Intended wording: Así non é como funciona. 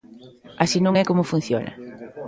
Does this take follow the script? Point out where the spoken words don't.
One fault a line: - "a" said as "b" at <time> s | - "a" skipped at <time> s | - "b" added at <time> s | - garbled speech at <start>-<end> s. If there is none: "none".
none